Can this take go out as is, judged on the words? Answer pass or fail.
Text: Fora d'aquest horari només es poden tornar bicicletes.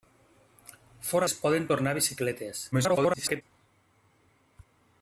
fail